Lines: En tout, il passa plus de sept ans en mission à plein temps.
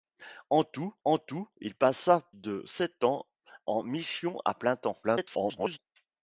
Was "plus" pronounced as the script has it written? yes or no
no